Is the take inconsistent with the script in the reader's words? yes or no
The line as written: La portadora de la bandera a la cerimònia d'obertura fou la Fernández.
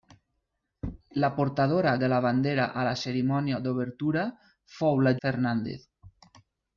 no